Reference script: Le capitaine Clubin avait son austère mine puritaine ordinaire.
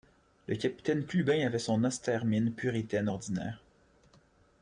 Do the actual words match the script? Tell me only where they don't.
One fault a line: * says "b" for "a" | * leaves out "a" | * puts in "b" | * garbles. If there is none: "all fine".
all fine